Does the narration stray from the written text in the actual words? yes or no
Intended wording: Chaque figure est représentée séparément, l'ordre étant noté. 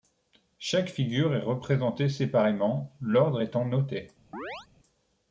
no